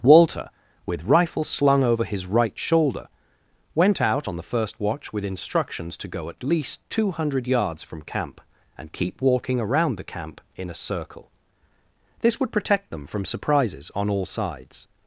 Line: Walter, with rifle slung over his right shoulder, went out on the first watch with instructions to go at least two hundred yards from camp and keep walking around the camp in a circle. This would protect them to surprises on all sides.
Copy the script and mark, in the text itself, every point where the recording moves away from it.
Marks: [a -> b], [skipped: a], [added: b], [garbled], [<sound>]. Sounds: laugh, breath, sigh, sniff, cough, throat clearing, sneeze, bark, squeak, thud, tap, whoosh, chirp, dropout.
Walter, with rifle slung over his right shoulder, went out on the first watch with instructions to go at least two hundred yards from camp and keep walking around the camp in a circle. This would protect them [to -> from] surprises on all sides.